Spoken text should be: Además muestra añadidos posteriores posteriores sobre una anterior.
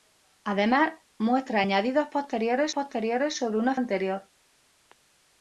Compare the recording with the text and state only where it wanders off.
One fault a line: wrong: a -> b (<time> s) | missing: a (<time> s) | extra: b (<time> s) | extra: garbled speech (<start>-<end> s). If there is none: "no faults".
no faults